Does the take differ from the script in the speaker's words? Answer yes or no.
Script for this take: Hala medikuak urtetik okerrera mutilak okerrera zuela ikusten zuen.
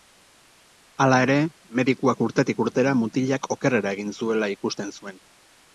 yes